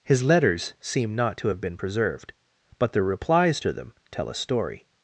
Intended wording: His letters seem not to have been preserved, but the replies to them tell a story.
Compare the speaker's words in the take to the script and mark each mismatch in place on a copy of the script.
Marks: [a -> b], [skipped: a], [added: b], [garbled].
His letters seem not to have been preserved, but the replies to them tell a story.